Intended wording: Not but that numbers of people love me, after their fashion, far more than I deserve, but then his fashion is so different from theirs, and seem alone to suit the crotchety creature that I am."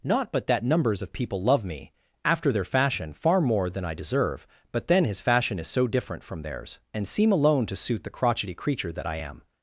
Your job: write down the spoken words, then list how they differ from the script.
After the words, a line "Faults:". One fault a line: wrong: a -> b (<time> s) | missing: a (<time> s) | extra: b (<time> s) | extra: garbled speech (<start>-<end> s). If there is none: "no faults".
Not but that numbers of people love me, after their fashion, far more than I deserve, but then his fashion is so different from theirs, and seem alone to suit the crotchety creature that I am."
Faults:
no faults